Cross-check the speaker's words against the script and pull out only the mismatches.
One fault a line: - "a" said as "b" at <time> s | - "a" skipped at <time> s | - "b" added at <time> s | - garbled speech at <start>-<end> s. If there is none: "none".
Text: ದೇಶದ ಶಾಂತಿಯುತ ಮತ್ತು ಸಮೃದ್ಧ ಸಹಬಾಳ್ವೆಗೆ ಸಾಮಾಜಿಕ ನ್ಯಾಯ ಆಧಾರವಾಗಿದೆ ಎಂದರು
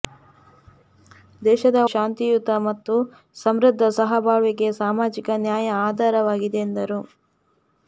none